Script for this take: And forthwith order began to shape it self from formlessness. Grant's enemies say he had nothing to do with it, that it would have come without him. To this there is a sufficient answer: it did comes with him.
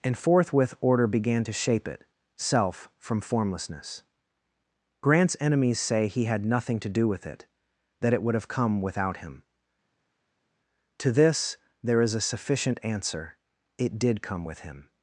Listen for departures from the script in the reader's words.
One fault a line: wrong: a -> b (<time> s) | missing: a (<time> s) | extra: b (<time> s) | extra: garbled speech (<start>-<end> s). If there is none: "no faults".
wrong: comes -> come (14.2 s)